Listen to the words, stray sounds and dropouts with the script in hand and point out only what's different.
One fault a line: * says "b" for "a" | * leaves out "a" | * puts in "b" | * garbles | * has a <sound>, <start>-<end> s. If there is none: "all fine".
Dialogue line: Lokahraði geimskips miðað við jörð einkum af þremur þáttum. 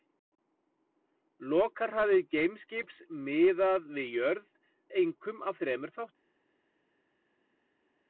all fine